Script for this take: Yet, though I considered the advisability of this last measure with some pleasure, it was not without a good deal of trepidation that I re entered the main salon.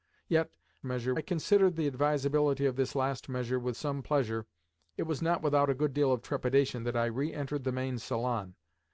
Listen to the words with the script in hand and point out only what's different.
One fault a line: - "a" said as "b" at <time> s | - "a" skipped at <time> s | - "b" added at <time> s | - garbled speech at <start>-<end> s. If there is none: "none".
- "though" said as "measure" at 0.8 s